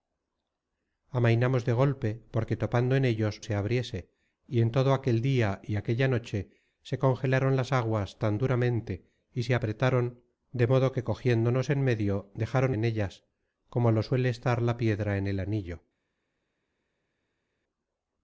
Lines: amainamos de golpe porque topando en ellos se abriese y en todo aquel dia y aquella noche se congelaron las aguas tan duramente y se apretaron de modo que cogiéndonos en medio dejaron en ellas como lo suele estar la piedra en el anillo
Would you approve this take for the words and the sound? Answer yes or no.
yes